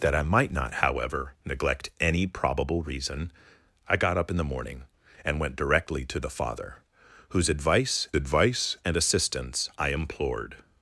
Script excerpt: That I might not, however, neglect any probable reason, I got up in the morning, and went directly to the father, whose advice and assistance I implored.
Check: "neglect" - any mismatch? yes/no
no